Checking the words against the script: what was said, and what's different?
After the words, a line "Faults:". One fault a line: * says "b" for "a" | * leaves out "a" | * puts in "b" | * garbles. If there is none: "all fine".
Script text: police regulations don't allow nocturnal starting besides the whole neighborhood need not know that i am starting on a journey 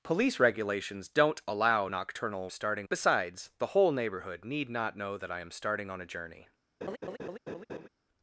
police regulations don't allow nocturnal starting besides the whole neighborhood need not know that i am starting on a journey
Faults:
all fine